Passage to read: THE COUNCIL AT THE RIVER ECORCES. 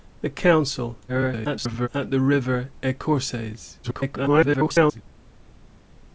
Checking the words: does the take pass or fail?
fail